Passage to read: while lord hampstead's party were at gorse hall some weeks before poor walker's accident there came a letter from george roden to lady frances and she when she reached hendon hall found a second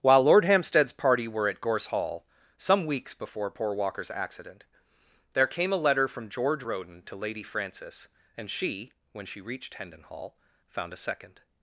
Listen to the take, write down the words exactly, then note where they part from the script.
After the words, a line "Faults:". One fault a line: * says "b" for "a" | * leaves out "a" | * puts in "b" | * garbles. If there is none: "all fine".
while lord hampstead's party were at gorse hall some weeks before poor walker's accident there came a letter from george roden to lady frances and she when she reached hendon hall found a second
Faults:
all fine